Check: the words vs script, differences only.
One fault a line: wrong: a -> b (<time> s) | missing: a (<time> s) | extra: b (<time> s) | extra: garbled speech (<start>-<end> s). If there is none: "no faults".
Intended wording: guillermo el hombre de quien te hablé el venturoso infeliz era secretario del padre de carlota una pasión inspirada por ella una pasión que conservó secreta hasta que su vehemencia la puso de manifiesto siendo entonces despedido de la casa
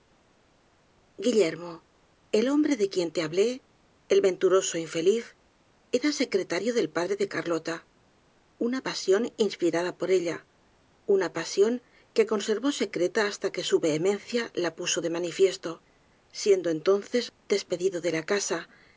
no faults